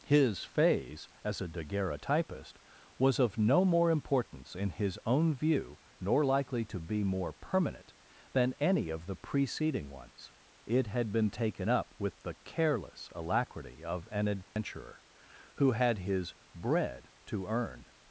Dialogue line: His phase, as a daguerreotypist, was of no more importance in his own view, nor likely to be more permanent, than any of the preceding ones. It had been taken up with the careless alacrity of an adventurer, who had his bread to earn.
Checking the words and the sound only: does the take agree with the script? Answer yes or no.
no